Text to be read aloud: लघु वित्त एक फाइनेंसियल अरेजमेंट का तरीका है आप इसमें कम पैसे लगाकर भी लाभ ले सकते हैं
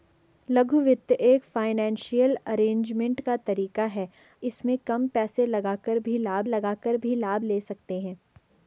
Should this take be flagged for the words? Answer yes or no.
yes